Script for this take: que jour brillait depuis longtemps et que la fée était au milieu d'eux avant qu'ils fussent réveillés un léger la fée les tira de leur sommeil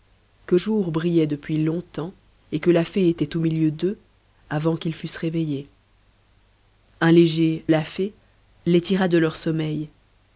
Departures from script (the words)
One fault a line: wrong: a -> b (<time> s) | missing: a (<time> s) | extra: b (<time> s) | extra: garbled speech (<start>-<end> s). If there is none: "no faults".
no faults